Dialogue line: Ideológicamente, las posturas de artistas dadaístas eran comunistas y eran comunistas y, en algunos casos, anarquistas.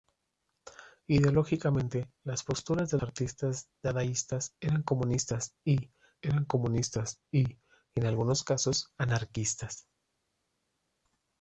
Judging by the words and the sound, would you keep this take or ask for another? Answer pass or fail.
pass